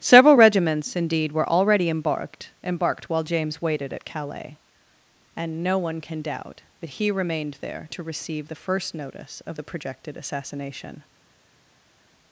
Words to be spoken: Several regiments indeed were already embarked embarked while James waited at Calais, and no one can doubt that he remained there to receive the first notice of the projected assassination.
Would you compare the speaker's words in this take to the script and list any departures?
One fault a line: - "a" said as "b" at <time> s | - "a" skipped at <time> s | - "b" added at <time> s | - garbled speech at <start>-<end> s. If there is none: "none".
none